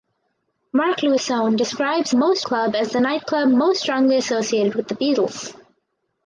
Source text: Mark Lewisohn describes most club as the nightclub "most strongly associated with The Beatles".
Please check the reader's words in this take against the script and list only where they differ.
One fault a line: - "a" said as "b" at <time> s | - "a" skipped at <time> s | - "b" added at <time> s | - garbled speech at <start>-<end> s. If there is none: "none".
none